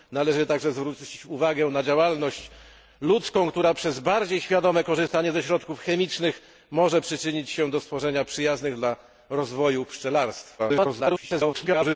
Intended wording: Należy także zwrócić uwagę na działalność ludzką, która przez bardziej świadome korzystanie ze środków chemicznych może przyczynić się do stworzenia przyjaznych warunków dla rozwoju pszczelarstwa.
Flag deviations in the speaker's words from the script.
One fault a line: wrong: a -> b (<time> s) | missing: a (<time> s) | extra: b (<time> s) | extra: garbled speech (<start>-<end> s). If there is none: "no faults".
missing: warunków (8.8 s)
extra: garbled speech (10.6-12.0 s)